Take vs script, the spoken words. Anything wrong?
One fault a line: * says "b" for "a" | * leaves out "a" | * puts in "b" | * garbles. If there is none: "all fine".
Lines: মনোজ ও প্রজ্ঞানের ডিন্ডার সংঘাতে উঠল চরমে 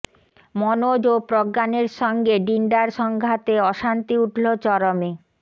* puts in "সঙ্গে"
* puts in "অশান্তি"